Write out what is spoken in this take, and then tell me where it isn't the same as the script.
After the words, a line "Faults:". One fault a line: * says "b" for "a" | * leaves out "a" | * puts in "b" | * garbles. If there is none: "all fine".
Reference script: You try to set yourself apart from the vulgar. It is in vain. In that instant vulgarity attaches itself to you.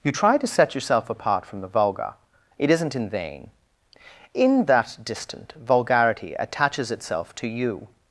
You try to set yourself apart from the vulgar. It isn't in vain. In that distant vulgarity attaches itself to you.
Faults:
* says "isn't" for "is"
* says "distant" for "instant"